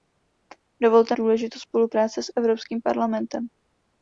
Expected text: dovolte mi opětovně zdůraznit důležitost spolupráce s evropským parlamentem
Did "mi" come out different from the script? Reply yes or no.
yes